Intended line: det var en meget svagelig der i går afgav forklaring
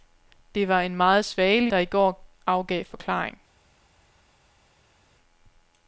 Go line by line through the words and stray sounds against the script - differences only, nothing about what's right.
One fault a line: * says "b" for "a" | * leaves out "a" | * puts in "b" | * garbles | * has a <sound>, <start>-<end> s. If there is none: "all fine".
all fine